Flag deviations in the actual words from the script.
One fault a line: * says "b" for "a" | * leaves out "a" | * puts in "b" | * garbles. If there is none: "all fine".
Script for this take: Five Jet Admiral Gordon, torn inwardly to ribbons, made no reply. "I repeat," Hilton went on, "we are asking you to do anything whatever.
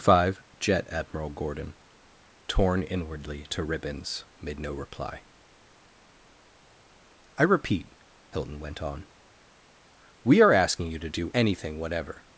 all fine